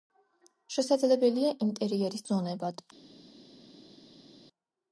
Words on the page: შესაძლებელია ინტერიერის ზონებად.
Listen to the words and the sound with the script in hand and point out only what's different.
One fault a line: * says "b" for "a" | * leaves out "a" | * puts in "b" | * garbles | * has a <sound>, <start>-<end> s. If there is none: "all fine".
all fine